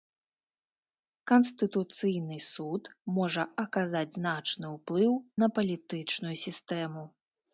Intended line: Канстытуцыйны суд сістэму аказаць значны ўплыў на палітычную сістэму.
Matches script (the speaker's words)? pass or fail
fail